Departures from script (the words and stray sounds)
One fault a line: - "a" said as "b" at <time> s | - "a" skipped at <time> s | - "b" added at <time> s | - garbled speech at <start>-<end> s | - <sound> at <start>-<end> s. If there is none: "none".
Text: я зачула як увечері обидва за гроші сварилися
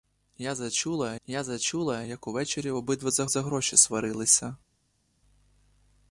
- "я зачула" added at 1.3 s
- "за" added at 3.3 s